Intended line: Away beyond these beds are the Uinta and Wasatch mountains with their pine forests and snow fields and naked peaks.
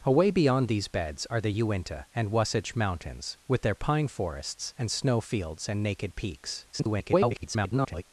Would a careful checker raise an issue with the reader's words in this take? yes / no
yes